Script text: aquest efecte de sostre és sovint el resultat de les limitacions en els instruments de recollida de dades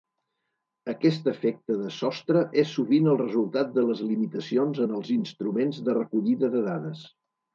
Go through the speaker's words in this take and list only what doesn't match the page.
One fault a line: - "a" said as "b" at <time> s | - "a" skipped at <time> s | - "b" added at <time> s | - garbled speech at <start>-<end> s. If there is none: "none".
none